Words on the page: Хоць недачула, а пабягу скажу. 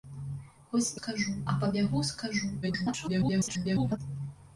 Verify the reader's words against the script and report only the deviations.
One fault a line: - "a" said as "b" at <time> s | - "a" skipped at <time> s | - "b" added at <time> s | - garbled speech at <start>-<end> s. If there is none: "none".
- "недачула" said as "скажу" at 1.0 s
- garbled speech at 2.6-4.0 s